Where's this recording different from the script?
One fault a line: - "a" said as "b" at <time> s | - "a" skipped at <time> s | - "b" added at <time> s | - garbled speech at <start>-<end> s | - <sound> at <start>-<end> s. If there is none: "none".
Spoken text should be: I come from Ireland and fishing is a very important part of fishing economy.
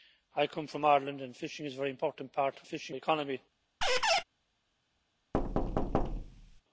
- squeak at 3.8-4.2 s
- thud at 5.3-6.6 s